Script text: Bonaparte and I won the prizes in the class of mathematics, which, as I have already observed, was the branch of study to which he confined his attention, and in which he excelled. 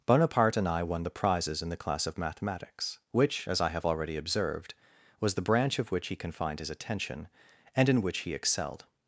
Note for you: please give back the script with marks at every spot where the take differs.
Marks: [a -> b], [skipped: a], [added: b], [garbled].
Bonaparte and I won the prizes in the class of mathematics, which, as I have already observed, was the branch of [skipped: study to] which he confined his attention, and in which he excelled.